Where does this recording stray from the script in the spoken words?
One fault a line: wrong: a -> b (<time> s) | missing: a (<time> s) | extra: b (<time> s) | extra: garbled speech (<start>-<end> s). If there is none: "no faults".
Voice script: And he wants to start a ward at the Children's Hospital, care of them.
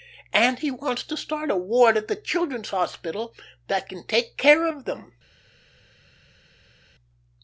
extra: that can take (3.7 s)